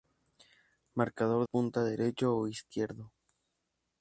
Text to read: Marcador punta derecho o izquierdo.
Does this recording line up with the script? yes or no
yes